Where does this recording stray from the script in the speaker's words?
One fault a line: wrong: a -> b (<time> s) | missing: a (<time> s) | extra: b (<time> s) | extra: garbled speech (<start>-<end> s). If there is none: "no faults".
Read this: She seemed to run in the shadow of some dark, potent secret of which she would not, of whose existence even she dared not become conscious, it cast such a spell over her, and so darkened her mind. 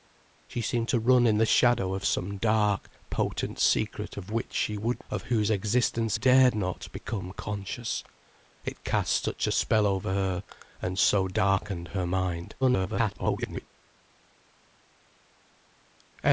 missing: not (5.0 s)
missing: even she (6.2 s)
extra: garbled speech (12.6-13.7 s)